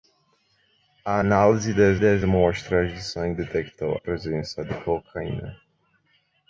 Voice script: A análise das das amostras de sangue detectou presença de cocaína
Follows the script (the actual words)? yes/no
yes